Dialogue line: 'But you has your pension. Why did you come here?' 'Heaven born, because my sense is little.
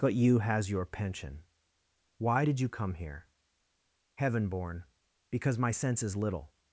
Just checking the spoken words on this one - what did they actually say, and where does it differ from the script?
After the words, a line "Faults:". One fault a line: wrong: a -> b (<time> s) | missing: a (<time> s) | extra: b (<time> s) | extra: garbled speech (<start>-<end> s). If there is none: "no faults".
'But you has your pension. Why did you come here?' 'Heaven born, because my sense is little.
Faults:
no faults